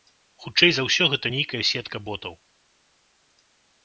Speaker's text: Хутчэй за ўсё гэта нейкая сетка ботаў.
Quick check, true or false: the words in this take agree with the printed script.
true